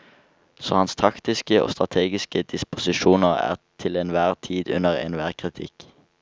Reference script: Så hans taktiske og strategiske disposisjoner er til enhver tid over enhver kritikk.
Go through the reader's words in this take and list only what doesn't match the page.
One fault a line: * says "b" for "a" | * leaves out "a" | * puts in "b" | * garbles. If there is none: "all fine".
* says "under" for "over"